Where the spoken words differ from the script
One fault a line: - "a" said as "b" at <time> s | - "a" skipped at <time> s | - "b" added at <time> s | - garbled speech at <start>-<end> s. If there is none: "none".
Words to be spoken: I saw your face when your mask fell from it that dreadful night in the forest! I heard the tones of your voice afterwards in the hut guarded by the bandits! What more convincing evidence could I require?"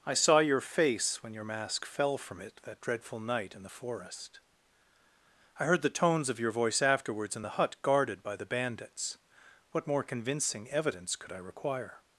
none